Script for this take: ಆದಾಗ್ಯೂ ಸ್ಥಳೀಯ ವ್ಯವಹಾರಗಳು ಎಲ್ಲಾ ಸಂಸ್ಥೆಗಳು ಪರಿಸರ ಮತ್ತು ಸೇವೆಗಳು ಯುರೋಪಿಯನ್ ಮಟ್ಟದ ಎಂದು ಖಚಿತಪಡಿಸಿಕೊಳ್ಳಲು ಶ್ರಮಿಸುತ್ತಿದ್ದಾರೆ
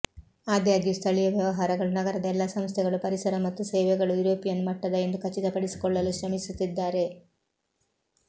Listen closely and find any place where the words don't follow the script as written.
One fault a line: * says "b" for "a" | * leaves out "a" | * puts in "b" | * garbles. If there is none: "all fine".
* puts in "ನಗರದ"